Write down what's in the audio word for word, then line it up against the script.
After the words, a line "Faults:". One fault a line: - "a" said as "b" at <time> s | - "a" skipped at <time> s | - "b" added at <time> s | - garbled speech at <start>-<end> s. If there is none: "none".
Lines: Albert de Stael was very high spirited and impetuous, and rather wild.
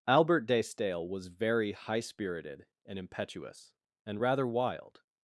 Albert de Stael was very high spirited and impetuous, and rather wild.
Faults:
none